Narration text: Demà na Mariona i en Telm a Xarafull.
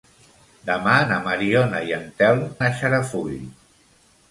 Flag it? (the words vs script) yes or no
no